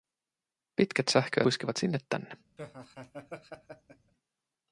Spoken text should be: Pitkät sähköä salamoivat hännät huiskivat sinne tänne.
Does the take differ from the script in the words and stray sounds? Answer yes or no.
yes